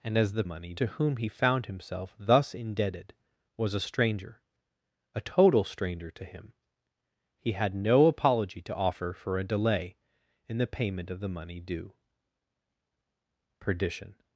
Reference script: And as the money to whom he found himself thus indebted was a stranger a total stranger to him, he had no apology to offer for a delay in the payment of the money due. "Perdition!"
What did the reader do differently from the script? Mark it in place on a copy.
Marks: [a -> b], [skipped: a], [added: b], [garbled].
And as the money to whom he found himself thus indebted was a stranger a total stranger to him, he had no apology to offer for a delay in the payment of the money due. "Perdition!"